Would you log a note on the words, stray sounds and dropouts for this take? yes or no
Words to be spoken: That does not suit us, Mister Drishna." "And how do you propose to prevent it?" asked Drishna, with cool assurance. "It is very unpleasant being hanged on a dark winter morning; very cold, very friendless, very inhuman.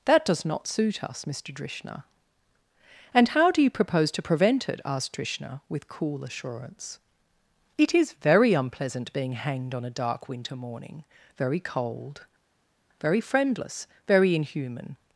no